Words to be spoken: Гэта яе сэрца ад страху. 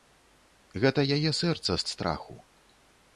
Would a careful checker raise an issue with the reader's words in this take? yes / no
no